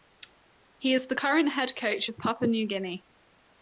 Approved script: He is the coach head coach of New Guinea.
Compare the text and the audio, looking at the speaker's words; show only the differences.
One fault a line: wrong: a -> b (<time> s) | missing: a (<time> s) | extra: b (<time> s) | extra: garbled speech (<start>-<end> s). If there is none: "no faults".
wrong: coach -> current (1.1 s)
extra: Papua (2.2 s)